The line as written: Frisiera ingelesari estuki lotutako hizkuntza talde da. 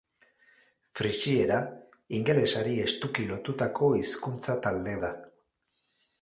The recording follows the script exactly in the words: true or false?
true